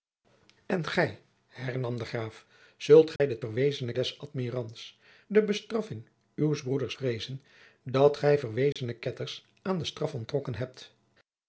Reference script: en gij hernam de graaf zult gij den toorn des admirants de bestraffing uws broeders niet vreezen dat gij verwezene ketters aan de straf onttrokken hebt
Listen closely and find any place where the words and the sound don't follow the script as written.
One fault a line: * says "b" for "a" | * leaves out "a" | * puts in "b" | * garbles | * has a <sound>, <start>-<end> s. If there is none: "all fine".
* has a dropout, 3.2-3.2 s
* says "verwezene" for "toorn"
* leaves out "niet"
* has a dropout, 8.7-8.8 s